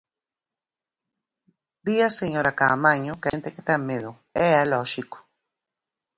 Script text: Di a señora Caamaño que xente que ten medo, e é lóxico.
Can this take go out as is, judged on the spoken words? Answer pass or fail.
pass